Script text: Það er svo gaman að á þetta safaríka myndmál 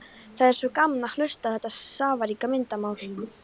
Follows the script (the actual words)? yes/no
no